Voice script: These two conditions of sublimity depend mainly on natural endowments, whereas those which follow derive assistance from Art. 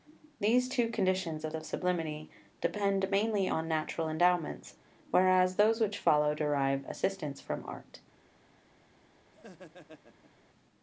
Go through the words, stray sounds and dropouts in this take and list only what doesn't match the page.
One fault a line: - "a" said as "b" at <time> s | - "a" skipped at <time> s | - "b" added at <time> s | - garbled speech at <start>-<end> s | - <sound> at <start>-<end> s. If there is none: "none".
- "of" added at 1.6 s
- laugh at 9.3-10.5 s